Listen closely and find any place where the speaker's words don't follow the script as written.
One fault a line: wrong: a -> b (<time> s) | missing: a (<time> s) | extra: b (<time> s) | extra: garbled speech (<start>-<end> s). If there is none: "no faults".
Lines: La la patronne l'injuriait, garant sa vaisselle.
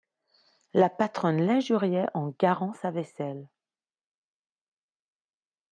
missing: la (0.9 s)
extra: en (2.1 s)